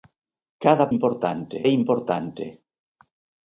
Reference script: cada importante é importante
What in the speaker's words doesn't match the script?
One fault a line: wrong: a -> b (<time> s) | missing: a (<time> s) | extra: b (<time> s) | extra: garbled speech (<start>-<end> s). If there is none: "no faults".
no faults